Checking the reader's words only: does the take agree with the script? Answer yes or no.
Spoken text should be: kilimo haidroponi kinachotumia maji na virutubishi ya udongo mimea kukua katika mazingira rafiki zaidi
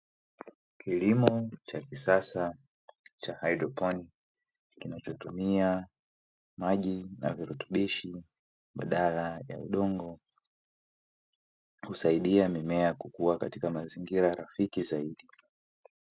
no